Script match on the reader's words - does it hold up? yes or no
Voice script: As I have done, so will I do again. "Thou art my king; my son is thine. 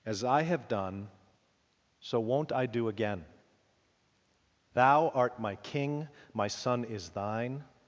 no